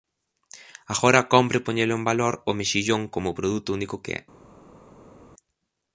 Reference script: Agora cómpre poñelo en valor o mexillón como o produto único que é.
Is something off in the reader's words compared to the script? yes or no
no